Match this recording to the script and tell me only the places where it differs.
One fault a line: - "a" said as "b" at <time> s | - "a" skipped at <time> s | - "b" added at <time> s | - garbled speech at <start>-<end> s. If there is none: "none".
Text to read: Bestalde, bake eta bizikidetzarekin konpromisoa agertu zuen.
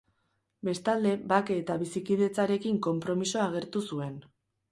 none